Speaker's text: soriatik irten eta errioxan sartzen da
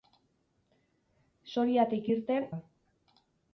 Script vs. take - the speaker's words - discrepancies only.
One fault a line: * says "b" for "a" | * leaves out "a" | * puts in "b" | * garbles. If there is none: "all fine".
* leaves out "eta errioxan sartzen"